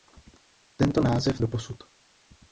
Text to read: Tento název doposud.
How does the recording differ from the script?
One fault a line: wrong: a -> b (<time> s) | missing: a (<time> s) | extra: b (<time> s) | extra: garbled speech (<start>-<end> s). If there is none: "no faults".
no faults